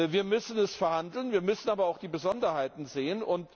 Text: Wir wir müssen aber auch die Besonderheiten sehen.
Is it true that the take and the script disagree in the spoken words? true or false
true